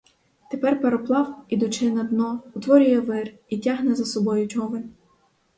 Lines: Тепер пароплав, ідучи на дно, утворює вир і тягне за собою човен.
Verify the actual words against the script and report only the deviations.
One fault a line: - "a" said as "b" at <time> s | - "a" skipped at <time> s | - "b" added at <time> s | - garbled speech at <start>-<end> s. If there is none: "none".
none